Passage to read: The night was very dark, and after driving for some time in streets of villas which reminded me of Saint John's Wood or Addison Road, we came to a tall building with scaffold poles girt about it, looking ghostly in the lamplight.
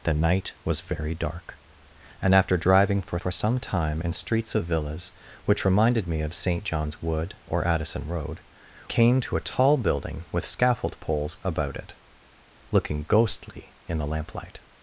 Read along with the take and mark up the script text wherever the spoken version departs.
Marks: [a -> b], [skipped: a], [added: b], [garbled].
The night was very dark, and after driving for [added: for] some time in streets of villas which reminded me of Saint John's Wood or Addison Road, [skipped: we] came to a tall building with scaffold poles [skipped: girt] about it, looking ghostly in the lamplight.